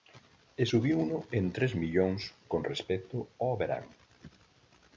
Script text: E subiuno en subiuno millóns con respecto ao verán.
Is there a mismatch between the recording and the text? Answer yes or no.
yes